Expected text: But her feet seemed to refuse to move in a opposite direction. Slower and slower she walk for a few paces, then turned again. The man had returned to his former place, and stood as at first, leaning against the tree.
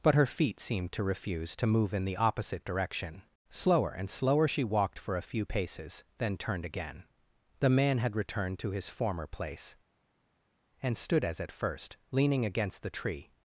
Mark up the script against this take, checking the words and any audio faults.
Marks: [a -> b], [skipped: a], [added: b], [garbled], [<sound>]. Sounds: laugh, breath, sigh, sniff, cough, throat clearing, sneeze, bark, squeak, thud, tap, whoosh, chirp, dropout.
But her feet seemed to refuse to move in [a -> the] opposite direction. Slower and slower she [walk -> walked] for a few paces, then turned again. The man had returned to his former place, and stood as at first, leaning against the tree.